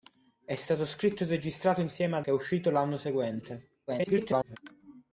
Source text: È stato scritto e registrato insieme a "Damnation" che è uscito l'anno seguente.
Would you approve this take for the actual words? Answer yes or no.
no